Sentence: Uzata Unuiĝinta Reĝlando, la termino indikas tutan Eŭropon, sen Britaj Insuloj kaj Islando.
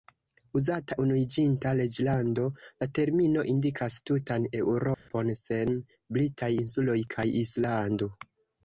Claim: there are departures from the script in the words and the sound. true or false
true